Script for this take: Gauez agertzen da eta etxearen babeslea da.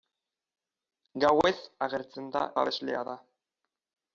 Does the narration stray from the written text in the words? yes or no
yes